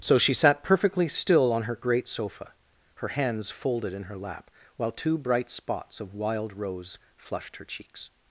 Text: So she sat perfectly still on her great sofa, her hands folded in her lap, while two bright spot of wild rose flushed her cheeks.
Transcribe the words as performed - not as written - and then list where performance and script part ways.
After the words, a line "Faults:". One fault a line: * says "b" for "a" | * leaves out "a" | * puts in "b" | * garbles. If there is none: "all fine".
So she sat perfectly still on her great sofa, her hands folded in her lap, while two bright spots of wild rose flushed her cheeks.
Faults:
* says "spots" for "spot"